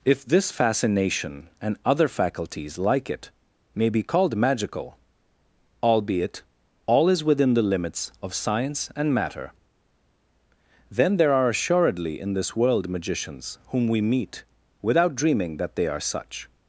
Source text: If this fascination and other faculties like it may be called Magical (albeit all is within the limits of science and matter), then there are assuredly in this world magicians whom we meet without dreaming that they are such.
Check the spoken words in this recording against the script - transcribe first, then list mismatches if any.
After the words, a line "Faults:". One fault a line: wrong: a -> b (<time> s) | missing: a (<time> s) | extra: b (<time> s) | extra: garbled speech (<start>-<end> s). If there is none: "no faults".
If this fascination and other faculties like it may be called Magical (albeit all is within the limits of science and matter), then there are assuredly in this world magicians whom we meet without dreaming that they are such.
Faults:
no faults